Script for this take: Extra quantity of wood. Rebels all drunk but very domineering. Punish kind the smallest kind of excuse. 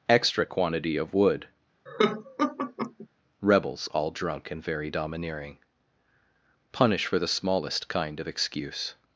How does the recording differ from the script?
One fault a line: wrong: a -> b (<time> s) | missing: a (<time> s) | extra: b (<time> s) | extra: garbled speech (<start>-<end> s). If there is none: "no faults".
wrong: but -> and (4.5 s)
wrong: kind -> for (7.1 s)